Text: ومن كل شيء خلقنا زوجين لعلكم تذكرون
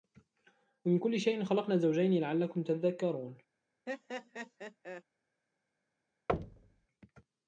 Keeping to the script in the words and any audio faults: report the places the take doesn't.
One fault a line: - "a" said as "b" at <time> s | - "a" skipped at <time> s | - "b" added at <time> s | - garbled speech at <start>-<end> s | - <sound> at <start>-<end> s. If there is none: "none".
- laugh at 3.9-5.0 s
- thud at 6.3-6.9 s